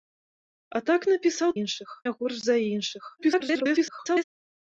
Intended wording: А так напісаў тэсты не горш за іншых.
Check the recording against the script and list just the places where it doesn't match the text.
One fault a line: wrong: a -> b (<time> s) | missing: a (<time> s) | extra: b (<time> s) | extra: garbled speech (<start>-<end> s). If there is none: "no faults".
wrong: тэсты -> іншых (1.6 s)
extra: garbled speech (3.2-4.2 s)